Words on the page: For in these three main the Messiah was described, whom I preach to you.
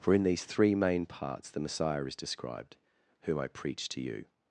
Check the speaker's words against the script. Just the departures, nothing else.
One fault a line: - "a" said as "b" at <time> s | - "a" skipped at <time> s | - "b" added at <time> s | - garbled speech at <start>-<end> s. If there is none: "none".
- "parts" added at 1.1 s
- "was" said as "is" at 2.0 s